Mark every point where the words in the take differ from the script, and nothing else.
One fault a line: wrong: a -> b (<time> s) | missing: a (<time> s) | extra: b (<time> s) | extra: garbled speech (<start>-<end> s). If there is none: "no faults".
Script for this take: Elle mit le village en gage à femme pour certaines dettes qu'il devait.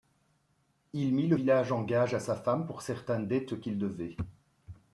wrong: Elle -> Il (0.9 s)
extra: sa (2.2 s)